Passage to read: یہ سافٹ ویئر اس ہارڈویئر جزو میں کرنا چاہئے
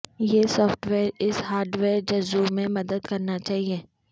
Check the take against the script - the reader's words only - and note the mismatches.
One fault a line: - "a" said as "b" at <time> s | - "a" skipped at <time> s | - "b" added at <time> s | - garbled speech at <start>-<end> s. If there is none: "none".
- "مدد" added at 2.8 s